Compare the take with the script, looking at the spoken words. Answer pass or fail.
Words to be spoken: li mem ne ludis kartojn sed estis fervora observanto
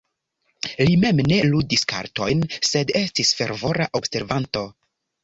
pass